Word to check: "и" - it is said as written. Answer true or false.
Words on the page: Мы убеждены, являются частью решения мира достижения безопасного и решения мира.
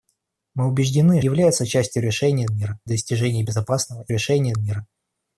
true